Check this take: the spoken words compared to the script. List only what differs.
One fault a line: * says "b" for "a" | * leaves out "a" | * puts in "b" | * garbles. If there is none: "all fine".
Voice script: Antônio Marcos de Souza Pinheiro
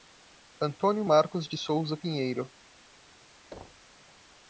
all fine